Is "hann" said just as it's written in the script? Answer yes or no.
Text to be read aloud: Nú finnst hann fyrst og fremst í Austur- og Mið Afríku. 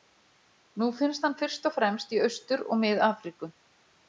yes